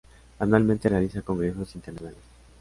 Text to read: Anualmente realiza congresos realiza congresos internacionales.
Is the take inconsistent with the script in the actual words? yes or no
yes